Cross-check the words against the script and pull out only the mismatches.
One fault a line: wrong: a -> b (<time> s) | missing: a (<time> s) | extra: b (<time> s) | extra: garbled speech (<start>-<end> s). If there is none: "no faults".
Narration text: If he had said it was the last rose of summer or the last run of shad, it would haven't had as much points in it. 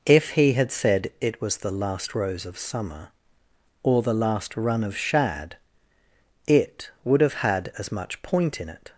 wrong: haven't -> have (7.2 s)
wrong: points -> point (8.2 s)